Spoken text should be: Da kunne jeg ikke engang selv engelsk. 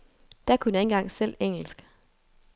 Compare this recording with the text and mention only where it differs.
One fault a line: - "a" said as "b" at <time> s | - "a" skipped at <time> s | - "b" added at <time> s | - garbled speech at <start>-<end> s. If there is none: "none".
none